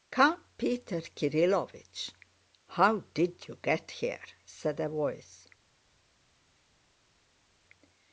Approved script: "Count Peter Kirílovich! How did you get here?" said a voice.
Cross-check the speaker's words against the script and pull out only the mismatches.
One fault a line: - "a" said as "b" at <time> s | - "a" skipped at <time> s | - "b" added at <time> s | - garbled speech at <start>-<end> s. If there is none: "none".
none